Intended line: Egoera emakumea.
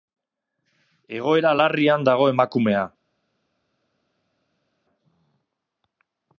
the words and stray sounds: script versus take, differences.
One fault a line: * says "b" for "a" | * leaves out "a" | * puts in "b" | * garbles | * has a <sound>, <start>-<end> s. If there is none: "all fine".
* puts in "larrian dago"